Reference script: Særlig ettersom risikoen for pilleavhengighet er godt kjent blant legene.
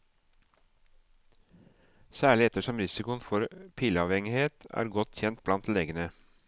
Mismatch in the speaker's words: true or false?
false